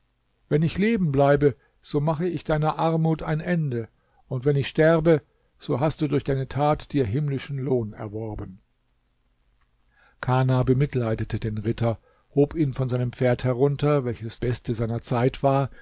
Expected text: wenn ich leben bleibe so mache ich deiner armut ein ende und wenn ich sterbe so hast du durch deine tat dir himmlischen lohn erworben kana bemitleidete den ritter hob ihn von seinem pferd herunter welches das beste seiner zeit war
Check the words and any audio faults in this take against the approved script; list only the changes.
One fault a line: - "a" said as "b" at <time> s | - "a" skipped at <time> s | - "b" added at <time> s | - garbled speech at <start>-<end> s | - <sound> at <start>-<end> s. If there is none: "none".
- "das" skipped at 14.4 s